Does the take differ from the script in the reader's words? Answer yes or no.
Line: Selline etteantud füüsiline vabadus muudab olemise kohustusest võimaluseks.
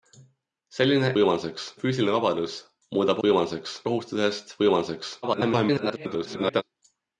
yes